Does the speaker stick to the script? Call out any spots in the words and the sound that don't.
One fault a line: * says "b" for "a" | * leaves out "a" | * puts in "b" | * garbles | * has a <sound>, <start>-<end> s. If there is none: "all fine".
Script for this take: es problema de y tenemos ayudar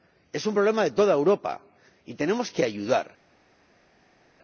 * puts in "un"
* puts in "toda europa"
* puts in "que"